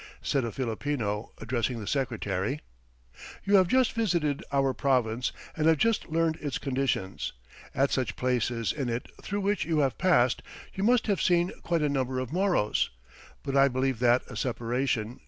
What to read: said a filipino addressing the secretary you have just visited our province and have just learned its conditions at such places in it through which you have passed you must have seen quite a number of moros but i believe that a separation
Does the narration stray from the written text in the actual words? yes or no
no